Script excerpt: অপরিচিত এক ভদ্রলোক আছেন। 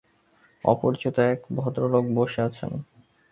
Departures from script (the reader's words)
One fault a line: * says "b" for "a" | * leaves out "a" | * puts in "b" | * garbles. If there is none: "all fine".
* puts in "বসে"